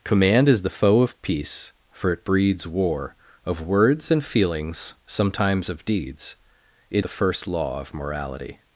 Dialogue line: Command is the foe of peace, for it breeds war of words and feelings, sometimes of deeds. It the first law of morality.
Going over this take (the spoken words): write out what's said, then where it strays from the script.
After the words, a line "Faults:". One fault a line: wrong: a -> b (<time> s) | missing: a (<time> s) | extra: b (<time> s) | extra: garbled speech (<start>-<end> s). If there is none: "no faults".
Command is the foe of peace, for it breeds war of words and feelings, sometimes of deeds. It the first law of morality.
Faults:
no faults